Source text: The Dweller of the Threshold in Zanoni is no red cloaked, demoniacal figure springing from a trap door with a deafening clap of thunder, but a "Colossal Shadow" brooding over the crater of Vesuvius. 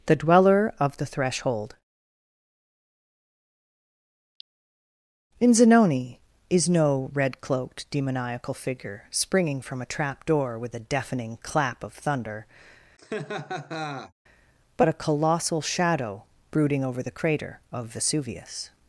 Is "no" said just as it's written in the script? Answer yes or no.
yes